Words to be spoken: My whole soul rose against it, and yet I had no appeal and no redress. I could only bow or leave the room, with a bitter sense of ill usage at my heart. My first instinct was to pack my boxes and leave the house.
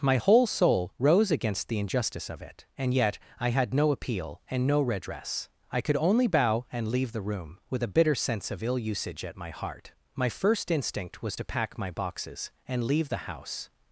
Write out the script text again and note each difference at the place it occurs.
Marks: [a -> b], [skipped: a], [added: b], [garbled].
My whole soul rose against [added: the injustice of] it, and yet I had no appeal and no redress. I could only bow [or -> and] leave the room, with a bitter sense of ill usage at my heart. My first instinct was to pack my boxes and leave the house.